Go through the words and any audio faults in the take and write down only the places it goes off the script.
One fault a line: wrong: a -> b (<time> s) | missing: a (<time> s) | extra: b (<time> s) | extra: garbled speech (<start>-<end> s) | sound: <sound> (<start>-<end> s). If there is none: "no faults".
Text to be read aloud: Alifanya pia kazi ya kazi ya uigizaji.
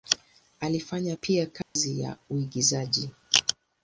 sound: dropout (1.6-1.8 s)
missing: kazi ya (2.2 s)